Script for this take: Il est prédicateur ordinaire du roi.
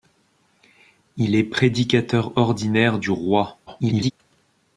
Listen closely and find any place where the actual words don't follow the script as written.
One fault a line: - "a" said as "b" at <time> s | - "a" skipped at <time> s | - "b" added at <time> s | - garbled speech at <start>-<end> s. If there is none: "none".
- garbled speech at 3.7-4.1 s